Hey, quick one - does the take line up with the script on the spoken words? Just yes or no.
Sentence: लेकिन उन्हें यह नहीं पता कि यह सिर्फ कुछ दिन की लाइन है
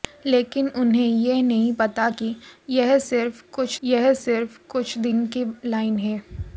no